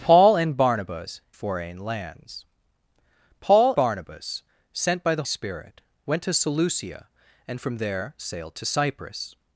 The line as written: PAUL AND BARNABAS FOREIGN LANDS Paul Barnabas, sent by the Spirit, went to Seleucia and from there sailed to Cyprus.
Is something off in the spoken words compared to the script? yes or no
no